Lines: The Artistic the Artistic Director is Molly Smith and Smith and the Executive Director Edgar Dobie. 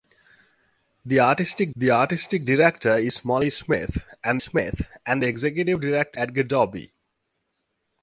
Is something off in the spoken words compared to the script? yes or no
no